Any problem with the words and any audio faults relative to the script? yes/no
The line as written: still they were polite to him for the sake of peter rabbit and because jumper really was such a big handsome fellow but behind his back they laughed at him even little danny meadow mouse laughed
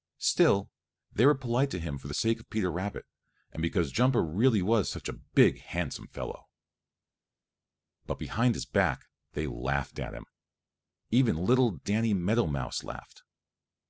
no